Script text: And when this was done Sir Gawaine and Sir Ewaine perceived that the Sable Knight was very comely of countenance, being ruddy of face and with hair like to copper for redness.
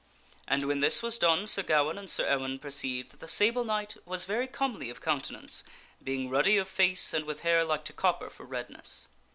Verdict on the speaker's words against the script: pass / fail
pass